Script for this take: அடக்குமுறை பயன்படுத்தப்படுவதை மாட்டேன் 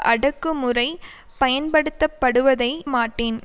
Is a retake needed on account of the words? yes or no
no